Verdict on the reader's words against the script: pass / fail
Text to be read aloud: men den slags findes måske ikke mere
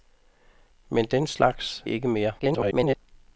fail